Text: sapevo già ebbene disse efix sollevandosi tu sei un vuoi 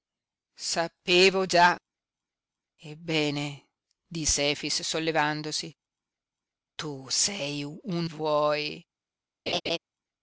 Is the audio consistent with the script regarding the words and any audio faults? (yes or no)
no